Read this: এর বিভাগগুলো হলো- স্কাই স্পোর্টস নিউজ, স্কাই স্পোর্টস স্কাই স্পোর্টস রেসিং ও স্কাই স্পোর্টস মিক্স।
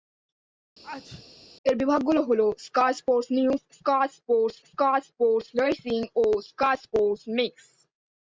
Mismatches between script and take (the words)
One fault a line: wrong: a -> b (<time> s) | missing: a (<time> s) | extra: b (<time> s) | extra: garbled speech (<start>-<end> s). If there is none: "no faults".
no faults